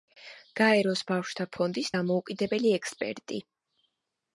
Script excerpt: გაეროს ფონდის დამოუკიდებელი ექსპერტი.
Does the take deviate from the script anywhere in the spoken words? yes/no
yes